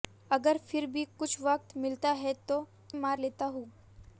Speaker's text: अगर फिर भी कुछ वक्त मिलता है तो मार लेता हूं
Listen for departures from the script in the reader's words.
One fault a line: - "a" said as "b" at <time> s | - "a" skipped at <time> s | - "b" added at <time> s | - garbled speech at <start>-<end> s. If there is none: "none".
none